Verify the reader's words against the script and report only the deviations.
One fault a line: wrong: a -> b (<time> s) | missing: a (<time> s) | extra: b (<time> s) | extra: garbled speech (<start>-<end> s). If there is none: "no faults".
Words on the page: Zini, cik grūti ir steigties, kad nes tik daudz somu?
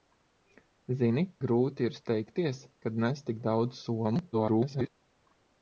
missing: cik (1.2 s)
extra: garbled speech (4.3-4.9 s)